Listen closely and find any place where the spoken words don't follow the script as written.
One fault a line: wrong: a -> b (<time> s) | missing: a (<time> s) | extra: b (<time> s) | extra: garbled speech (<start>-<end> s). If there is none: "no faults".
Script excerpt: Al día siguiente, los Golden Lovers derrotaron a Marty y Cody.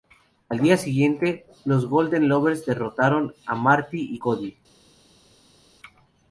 no faults